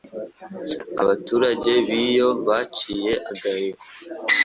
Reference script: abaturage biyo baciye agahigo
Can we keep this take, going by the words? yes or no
yes